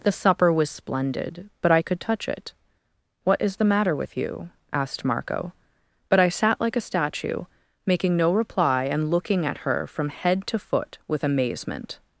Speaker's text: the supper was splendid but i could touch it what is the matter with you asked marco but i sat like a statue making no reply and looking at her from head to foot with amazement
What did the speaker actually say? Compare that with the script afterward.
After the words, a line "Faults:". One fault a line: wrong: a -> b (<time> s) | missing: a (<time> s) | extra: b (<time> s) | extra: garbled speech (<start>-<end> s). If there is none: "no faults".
the supper was splendid but i could touch it what is the matter with you asked marco but i sat like a statue making no reply and looking at her from head to foot with amazement
Faults:
no faults